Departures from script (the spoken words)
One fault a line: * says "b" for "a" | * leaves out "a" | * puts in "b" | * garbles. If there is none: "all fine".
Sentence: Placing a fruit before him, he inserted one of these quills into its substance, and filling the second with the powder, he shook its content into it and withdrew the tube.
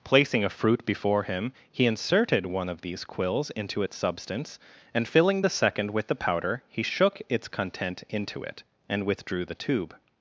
all fine